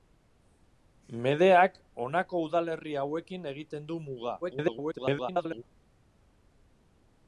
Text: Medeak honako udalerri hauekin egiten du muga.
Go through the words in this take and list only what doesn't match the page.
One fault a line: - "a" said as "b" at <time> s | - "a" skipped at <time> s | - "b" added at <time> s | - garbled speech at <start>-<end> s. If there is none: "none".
- garbled speech at 4.4-5.6 s